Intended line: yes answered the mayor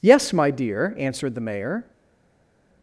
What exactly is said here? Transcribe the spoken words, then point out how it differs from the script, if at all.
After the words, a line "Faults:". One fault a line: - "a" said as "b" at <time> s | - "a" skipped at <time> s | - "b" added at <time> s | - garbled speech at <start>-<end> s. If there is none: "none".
yes my dear answered the mayor
Faults:
- "my dear" added at 0.3 s